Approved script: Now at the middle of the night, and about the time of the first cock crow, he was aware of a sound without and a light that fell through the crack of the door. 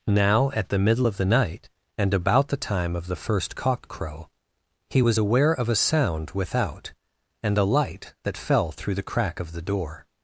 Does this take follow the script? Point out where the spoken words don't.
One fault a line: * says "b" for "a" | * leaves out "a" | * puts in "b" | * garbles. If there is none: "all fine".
all fine